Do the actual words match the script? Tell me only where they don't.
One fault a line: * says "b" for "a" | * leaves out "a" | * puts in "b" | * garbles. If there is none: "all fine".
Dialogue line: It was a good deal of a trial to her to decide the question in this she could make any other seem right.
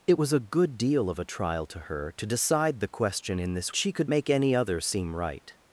all fine